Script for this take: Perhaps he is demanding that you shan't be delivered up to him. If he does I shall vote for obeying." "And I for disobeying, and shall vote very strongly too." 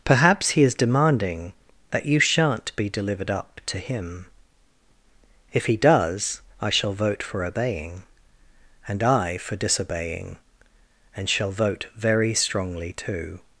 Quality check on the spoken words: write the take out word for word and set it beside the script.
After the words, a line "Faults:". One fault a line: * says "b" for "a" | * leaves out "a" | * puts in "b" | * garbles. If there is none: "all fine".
Perhaps he is demanding that you shan't be delivered up to him. If he does I shall vote for obeying." "And I for disobeying, and shall vote very strongly too."
Faults:
all fine